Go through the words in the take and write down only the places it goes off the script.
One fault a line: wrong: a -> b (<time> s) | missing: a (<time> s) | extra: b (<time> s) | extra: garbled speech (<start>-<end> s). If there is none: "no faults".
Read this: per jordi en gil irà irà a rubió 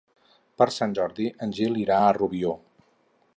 extra: sant (0.8 s)
missing: irà (2.0 s)